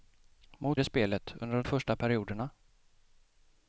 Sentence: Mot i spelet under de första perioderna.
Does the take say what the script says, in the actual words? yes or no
yes